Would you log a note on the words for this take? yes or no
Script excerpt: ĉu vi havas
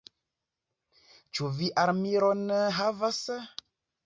yes